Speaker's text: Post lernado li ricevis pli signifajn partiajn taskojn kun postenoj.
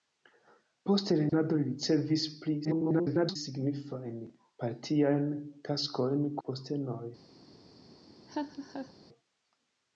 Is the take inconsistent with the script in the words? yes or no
yes